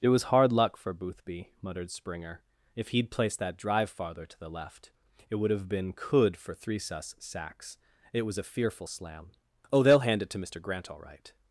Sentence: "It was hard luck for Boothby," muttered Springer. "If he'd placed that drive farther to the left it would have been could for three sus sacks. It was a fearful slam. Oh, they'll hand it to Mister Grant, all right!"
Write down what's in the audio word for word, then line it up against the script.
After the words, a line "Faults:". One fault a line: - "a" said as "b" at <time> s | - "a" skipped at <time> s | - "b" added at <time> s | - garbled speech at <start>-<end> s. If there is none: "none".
"It was hard luck for Boothby," muttered Springer. "If he'd placed that drive farther to the left it would have been could for three sus sacks. It was a fearful slam. Oh, they'll hand it to Mister Grant, all right!"
Faults:
none